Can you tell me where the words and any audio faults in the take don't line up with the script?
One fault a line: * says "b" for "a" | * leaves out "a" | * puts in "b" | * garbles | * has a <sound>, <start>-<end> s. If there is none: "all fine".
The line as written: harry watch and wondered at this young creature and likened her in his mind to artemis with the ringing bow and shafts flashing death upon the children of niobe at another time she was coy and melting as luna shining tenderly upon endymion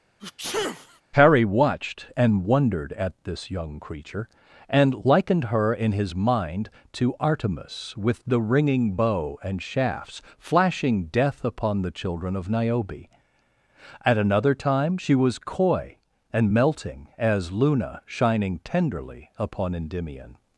* has a sneeze, 0.2-1.0 s
* says "watched" for "watch"